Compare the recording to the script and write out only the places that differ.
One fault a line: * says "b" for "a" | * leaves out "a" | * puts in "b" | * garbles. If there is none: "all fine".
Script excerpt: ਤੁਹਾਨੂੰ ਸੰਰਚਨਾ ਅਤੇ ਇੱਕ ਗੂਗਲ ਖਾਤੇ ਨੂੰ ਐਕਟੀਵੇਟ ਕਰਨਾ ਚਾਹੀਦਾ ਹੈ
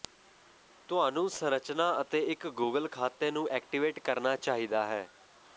all fine